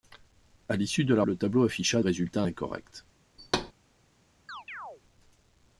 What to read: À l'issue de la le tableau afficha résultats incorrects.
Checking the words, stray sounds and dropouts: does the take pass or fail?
fail